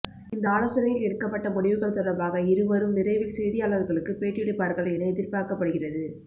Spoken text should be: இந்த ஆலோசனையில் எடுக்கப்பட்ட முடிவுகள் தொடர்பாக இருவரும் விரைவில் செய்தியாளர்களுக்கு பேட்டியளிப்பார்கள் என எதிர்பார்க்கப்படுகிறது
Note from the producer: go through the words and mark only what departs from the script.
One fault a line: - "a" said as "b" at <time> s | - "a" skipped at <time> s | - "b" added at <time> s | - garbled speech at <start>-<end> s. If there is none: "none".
none